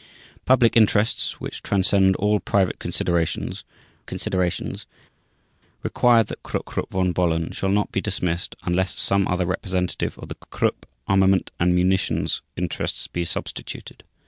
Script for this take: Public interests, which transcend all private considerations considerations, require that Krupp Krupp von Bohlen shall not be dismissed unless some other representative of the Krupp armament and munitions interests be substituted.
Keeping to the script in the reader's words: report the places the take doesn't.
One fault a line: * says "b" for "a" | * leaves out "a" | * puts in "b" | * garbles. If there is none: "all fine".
all fine